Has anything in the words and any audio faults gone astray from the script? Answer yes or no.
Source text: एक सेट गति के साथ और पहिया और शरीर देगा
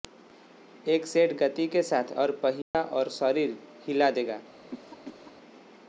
yes